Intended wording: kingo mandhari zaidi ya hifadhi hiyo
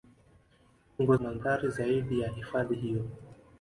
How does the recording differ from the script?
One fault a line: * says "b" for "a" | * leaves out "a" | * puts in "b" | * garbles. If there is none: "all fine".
all fine